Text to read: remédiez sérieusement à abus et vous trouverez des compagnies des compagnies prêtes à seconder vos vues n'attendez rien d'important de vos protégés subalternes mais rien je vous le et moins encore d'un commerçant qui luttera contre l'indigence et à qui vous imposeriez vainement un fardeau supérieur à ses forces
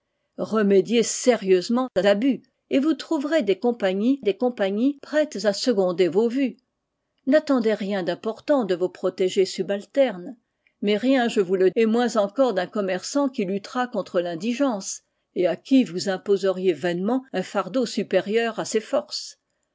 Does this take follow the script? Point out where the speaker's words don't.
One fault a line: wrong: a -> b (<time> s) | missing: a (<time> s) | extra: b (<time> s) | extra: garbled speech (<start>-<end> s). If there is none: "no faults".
no faults